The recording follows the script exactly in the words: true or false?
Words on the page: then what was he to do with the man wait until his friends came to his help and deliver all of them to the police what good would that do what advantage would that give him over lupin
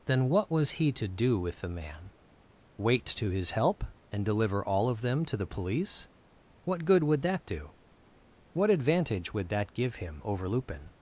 false